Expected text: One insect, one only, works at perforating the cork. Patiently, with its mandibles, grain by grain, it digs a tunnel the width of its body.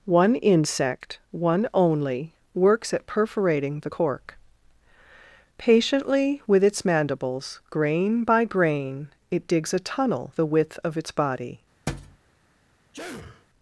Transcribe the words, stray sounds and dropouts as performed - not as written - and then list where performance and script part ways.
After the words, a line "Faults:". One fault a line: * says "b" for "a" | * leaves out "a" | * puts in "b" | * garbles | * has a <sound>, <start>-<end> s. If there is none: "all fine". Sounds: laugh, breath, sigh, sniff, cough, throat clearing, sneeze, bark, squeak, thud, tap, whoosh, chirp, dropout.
One insect, one only, works at perforating the cork. Patiently, with its mandibles, grain by grain, it digs a tunnel the width of its body.
Faults:
* has a thud, 11.9-12.2 s
* has a sneeze, 12.9-13.5 s